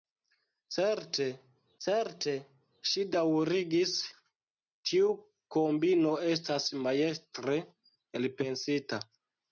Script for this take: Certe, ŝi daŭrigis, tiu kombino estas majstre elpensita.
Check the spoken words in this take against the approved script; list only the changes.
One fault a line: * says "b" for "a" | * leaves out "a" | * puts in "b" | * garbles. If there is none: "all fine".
* puts in "certe"